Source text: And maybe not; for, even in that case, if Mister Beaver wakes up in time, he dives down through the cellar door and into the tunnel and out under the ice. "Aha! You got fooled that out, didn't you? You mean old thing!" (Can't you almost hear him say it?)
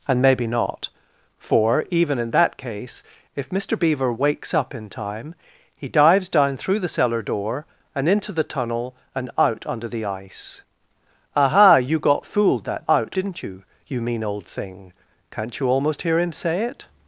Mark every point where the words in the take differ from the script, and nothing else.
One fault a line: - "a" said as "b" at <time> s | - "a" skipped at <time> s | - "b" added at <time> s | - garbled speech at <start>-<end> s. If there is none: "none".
none